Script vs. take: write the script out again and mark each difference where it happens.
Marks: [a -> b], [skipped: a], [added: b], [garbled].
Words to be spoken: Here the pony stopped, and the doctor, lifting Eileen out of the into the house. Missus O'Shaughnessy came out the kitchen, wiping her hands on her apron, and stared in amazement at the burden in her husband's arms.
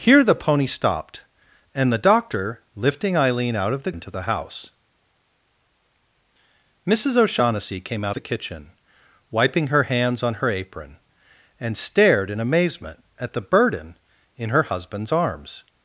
Here the pony stopped, and the doctor, lifting Eileen out of the into the house. Missus O'Shaughnessy came out the kitchen, wiping her hands on her apron, and stared in amazement at the burden in her husband's arms.